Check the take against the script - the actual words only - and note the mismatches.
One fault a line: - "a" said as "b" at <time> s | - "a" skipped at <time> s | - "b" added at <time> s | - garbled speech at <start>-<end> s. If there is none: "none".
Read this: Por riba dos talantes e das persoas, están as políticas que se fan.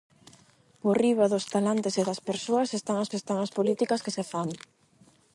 - "están as" added at 3.2 s